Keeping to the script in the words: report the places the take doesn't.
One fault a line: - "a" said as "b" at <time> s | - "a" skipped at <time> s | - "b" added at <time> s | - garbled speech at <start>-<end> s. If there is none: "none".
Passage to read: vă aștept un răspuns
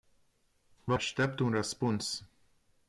none